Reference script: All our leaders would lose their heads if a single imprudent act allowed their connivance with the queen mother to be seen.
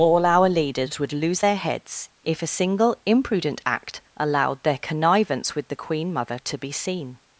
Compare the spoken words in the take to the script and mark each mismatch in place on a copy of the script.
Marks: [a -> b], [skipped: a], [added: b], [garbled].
All our leaders would lose their heads if a single imprudent act allowed their connivance with the queen mother to be seen.